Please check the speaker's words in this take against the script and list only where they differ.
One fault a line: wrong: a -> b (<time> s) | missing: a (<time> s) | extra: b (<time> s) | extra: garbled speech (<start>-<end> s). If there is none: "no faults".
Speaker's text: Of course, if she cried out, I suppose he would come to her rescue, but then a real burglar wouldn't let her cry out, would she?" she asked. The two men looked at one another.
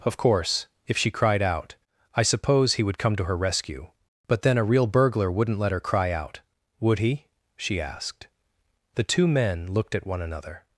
wrong: she -> he (7.0 s)